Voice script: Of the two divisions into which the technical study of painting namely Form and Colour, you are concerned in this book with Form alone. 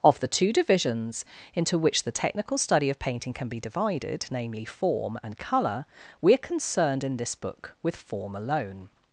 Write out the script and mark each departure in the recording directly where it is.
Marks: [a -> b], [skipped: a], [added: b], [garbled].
Of the two divisions into which the technical study of painting [added: can be divided] namely Form and Colour, [you -> we] are concerned in this book with Form alone.